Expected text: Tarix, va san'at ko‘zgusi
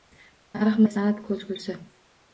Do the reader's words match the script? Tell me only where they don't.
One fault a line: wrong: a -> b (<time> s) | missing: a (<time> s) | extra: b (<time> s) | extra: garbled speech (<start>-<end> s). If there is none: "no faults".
no faults